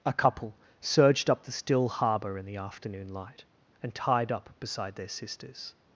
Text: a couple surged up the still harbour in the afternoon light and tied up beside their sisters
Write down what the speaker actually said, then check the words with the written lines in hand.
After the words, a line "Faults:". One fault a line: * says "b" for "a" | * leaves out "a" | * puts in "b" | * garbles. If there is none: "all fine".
a couple surged up the still harbour in the afternoon light and tied up beside their sisters
Faults:
all fine